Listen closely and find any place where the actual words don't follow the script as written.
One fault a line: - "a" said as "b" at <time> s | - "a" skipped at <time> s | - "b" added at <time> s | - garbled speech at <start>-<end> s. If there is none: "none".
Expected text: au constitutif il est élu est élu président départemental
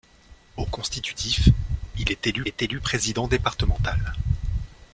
none